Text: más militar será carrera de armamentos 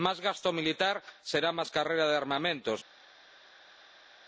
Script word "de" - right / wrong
right